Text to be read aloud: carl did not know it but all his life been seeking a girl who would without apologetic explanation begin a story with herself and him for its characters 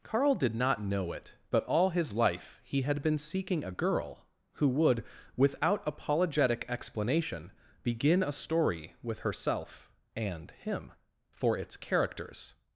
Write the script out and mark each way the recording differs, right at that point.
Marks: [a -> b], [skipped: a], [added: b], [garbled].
carl did not know it but all his life [added: he had] been seeking a girl who would without apologetic explanation begin a story with herself and him for its characters